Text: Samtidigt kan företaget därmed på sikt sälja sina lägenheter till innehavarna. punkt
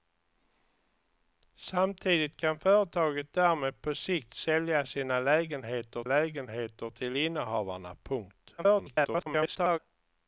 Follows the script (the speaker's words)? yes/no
no